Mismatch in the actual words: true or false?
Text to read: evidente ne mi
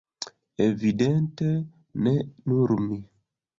true